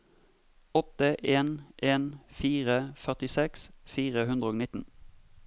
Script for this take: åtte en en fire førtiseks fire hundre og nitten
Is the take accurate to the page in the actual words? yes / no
yes